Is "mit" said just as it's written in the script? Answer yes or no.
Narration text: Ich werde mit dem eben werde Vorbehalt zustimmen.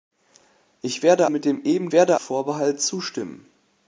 yes